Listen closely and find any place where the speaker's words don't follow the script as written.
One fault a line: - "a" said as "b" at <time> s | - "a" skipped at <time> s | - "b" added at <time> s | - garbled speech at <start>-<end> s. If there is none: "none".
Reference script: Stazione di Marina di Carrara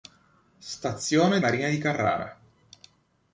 - "di" skipped at 1.4 s